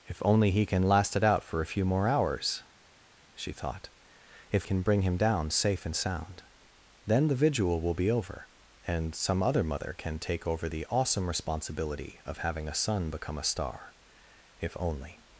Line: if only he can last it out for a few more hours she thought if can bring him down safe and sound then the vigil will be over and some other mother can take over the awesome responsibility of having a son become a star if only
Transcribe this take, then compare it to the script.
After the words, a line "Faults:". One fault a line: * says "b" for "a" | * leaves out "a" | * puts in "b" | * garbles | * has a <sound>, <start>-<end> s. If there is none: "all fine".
if only he can last it out for a few more hours she thought if can bring him down safe and sound then the vigil will be over and some other mother can take over the awesome responsibility of having a son become a star if only
Faults:
all fine